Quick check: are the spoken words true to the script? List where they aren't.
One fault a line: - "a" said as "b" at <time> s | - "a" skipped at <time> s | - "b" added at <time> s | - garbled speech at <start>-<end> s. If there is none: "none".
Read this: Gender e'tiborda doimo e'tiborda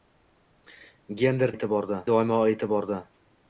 none